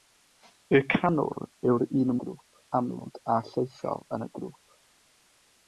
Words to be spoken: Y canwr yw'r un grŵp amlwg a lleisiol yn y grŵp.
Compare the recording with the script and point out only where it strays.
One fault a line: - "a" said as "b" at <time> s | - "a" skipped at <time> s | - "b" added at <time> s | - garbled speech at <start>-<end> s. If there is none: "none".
none